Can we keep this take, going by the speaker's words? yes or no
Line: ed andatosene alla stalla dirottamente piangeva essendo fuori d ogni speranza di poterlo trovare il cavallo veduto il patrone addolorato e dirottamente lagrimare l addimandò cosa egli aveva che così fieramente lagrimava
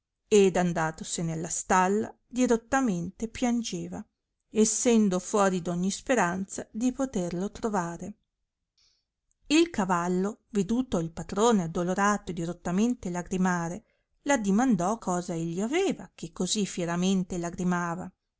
yes